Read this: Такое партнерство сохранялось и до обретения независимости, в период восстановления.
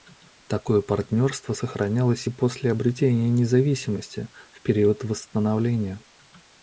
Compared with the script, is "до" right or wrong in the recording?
wrong